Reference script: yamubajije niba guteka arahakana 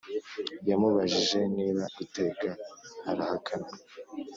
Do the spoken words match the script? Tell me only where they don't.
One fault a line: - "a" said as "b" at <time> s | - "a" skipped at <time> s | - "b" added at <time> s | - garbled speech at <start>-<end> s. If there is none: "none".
none